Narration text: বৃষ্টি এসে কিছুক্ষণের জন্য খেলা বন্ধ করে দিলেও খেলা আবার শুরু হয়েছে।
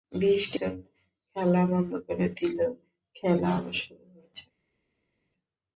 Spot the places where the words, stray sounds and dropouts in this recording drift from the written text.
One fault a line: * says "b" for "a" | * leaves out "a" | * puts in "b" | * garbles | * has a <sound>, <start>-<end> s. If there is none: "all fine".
* leaves out "এসে কিছুক্ষণের"